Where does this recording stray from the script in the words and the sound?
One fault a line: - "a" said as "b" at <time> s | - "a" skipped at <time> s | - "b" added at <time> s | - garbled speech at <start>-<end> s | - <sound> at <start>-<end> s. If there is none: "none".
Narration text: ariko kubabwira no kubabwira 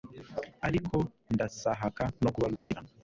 - "kubabwira" said as "ndasahaka" at 1.3 s
- dropout at 2.6-2.7 s